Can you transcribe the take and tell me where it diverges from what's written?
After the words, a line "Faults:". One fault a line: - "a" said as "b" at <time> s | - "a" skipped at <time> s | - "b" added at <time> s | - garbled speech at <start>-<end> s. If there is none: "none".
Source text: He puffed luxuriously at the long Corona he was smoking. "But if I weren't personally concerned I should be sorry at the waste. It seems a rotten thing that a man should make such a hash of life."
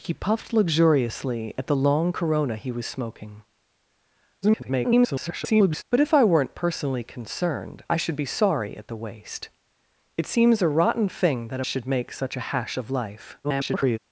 He puffed luxuriously at the long Corona he was smoking. [garbled] "But if I weren't personally concerned I should be sorry at the waste. It seems a rotten thing that a should make such a hash of life." [garbled]
Faults:
- garbled speech at 4.4-5.8 s
- "man" skipped at 11.6 s
- garbled speech at 13.4-14.0 s